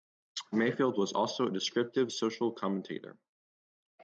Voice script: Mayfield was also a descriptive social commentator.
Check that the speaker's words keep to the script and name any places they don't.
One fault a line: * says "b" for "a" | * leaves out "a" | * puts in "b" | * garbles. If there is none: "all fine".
all fine